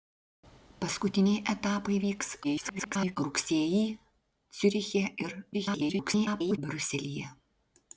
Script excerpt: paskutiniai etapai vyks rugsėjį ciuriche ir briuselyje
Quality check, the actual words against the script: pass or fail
fail